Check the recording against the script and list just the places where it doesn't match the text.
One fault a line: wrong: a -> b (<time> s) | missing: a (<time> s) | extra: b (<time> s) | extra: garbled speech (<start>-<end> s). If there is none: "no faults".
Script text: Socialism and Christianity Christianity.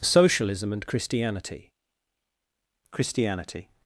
no faults